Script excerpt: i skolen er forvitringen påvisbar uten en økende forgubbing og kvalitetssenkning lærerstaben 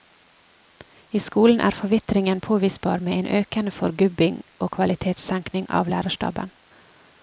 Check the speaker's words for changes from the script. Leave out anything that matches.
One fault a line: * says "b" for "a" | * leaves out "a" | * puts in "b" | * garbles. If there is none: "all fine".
* says "med" for "uten"
* puts in "av"